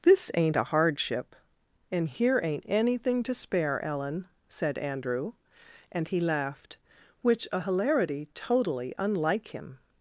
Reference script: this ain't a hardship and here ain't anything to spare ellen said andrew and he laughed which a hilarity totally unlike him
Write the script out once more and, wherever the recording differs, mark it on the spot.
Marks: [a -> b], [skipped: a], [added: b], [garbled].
this ain't a hardship and here ain't anything to spare ellen said andrew and he laughed which a hilarity totally unlike him